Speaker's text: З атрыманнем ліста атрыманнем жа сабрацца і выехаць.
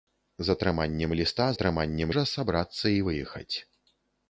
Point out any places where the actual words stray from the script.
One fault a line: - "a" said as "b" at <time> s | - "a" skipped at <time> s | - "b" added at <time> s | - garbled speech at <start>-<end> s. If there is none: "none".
none